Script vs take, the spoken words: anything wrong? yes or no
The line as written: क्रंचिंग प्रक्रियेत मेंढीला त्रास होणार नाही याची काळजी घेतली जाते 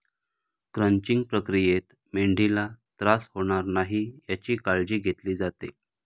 no